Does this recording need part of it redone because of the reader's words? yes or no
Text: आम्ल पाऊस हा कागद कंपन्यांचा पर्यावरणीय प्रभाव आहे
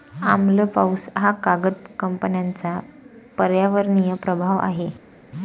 no